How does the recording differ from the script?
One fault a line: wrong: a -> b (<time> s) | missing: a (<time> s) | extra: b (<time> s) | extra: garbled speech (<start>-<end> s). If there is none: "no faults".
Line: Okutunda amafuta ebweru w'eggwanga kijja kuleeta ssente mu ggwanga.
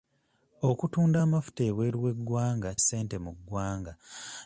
missing: kijja kuleeta (2.7 s)